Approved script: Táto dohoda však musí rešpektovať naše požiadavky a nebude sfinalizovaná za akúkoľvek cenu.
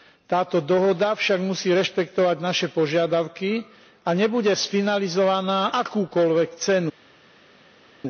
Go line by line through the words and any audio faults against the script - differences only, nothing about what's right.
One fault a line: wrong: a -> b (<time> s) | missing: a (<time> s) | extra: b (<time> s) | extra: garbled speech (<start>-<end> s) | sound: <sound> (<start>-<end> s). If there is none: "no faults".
missing: za (5.8 s)